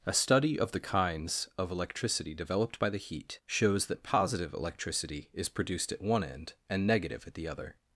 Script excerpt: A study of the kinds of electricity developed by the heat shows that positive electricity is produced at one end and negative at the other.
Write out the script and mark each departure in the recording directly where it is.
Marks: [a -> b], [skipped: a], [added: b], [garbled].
A study of the kinds of electricity developed by the heat shows that positive electricity is produced at one end and negative at the other.